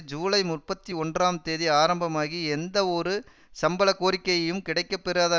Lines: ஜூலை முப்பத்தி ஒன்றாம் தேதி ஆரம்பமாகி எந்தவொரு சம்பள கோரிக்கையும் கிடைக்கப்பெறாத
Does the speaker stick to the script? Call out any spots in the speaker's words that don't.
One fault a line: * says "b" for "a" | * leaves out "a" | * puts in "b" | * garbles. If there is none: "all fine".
all fine